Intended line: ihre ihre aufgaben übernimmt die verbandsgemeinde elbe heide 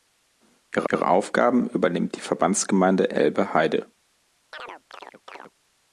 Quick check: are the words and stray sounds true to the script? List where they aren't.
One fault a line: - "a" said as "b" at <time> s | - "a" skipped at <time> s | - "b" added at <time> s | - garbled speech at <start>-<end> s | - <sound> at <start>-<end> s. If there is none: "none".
- chirp at 4.5-5.5 s